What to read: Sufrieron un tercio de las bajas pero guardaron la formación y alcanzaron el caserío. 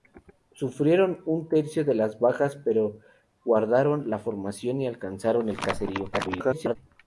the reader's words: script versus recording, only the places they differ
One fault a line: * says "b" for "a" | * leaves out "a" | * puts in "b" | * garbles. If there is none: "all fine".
* garbles